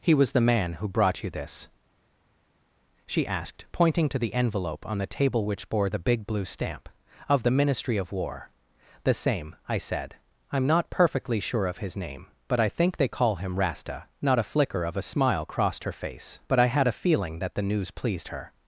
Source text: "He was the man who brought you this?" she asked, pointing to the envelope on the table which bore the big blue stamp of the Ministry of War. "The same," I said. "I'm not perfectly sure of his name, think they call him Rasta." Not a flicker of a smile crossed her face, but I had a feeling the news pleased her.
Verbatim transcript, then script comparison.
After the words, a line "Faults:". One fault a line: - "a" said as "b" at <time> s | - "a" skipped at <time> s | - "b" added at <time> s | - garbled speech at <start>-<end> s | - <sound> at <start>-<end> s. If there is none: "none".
"He was the man who brought you this?" she asked, pointing to the envelope on the table which bore the big blue stamp of the Ministry of War. "The same," I said. "I'm not perfectly sure of his name, but I think they call him Rasta." Not a flicker of a smile crossed her face, but I had a feeling that the news pleased her.
Faults:
- "but I" added at 12.5 s
- "that" added at 17.4 s